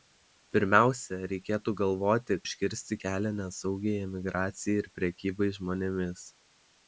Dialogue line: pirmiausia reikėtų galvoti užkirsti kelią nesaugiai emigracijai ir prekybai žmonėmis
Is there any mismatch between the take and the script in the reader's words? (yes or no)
no